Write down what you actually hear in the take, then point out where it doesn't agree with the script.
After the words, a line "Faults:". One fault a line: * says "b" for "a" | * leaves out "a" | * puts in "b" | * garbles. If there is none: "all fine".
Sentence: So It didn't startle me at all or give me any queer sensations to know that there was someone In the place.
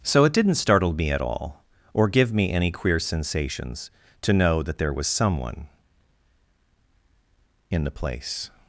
So It didn't startle me at all or give me any queer sensations to know that there was someone In the place.
Faults:
all fine